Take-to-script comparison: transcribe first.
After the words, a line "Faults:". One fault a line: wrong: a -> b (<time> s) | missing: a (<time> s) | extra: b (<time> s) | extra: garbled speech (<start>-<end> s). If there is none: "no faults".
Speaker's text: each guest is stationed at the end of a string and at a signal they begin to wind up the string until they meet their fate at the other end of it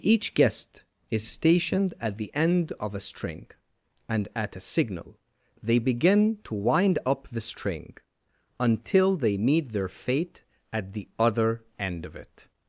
each guest is stationed at the end of a string and at a signal they begin to wind up the string until they meet their fate at the other end of it
Faults:
no faults